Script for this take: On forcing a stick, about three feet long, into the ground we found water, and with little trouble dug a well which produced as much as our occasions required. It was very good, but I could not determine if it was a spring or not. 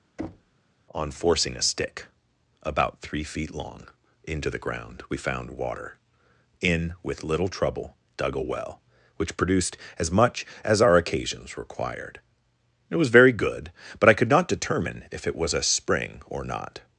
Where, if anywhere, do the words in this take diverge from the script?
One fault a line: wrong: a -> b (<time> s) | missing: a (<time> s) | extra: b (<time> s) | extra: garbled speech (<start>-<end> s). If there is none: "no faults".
wrong: and -> in (6.6 s)